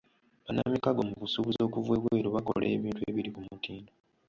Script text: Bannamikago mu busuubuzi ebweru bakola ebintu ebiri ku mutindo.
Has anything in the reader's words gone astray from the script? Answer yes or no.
yes